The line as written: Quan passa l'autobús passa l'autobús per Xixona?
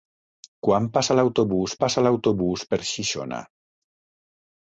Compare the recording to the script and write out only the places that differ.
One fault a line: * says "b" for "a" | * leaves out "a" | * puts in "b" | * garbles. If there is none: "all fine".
all fine